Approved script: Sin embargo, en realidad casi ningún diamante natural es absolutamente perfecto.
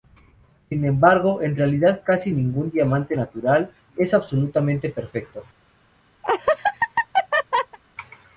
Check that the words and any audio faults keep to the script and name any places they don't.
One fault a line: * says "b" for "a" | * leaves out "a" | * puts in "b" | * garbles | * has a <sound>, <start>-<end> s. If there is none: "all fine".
* has a laugh, 6.2-7.8 s